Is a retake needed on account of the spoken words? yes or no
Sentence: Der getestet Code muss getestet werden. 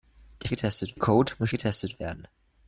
no